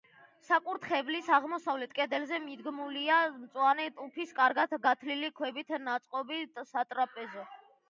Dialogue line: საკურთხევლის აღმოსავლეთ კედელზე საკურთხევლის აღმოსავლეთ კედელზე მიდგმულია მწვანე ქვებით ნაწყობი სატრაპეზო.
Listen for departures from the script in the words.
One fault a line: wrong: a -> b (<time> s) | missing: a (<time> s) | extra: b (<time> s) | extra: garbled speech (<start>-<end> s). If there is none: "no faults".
wrong: საკურთხევლის აღმოსავლეთ კედელზე მიდგმულია მწვანე -> მიდგმულია მწვანე ტუფის კარგად გათლილი (2.5 s)